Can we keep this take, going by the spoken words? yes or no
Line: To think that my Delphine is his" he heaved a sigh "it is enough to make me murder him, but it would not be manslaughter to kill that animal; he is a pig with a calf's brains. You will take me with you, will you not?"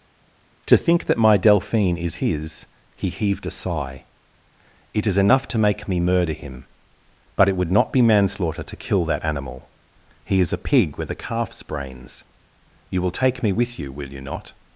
yes